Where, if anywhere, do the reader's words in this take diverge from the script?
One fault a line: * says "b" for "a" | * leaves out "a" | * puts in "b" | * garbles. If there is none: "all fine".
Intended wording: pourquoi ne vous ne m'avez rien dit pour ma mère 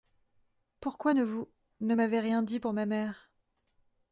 all fine